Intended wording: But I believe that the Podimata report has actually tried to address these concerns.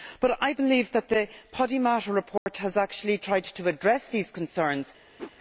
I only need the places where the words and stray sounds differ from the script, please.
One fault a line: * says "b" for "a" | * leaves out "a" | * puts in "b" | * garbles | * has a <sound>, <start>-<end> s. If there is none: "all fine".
* has a dropout, 2.4-2.5 s
* has a whoosh, 5.2-5.3 s